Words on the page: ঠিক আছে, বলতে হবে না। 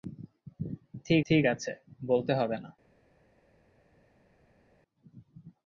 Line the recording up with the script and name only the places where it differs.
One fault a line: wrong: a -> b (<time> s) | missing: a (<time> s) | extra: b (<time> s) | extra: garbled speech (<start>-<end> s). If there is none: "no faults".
extra: ঠিক (1.3 s)